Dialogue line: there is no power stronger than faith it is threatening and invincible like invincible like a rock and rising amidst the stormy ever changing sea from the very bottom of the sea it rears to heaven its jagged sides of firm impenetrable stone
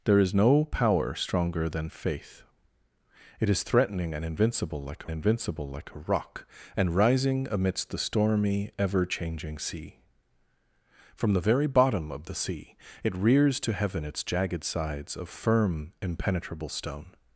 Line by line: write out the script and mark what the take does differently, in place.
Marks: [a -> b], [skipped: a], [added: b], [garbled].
there is no power stronger than faith it is threatening and invincible like invincible like a rock and rising amidst the stormy ever changing sea from the very bottom of the sea it rears to heaven its jagged sides of firm impenetrable stone